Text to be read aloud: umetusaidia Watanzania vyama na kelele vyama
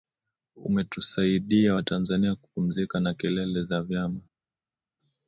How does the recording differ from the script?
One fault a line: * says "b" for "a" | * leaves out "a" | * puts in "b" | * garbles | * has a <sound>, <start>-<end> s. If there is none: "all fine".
* says "kupumzika" for "vyama"
* puts in "za"